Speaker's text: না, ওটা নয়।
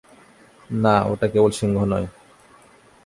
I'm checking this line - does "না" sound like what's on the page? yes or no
yes